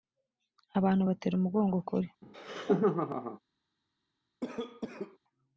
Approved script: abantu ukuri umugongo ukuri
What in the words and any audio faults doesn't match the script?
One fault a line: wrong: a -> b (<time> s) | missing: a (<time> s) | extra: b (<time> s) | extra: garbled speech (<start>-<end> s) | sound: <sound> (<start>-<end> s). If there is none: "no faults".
wrong: ukuri -> batera (1.1 s)
sound: laugh (2.2-3.4 s)
sound: cough (4.4-5.2 s)